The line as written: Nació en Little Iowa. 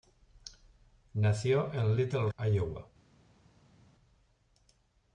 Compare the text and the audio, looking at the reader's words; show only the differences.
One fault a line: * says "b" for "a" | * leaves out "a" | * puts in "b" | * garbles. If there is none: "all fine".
all fine